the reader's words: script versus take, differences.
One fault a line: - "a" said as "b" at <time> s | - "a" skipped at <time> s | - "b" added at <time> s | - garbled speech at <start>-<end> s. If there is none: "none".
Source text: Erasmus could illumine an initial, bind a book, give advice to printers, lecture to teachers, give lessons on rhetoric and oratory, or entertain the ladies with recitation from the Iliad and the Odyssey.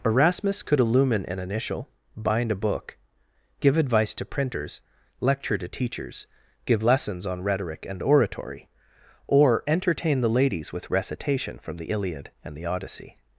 none